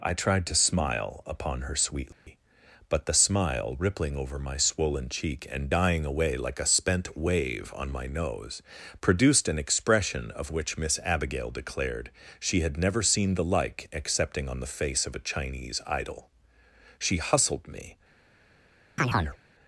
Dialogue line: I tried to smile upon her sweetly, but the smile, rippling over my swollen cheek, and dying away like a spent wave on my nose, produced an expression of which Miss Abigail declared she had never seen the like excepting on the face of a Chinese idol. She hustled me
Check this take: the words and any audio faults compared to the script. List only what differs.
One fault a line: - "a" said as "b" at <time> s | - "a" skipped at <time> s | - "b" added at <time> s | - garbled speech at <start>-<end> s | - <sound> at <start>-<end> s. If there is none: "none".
- dropout at 2.1-2.3 s
- chirp at 19.0-19.4 s